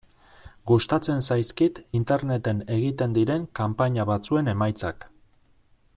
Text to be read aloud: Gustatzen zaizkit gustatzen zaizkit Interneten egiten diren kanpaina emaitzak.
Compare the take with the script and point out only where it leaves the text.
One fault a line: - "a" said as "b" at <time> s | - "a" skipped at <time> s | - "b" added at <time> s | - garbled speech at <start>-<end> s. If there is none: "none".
- "gustatzen zaizkit" skipped at 1.8 s
- "batzuen" added at 4.1 s